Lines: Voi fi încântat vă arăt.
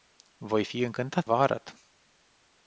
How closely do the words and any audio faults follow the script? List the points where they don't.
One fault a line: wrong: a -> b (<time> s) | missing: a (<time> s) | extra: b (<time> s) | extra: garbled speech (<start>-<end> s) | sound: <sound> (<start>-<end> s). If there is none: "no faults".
no faults